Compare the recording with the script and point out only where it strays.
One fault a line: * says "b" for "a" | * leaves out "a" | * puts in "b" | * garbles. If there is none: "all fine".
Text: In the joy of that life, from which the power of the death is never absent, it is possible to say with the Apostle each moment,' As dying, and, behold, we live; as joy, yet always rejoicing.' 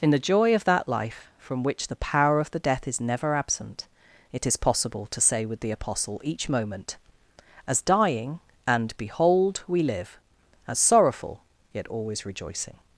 * says "sorrowful" for "joy"